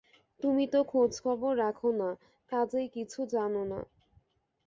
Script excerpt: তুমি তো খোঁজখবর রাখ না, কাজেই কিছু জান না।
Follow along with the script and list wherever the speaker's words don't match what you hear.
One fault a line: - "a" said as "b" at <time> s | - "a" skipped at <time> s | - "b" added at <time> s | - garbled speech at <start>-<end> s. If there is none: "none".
none